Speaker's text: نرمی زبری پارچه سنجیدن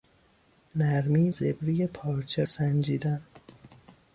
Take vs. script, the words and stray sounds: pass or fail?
pass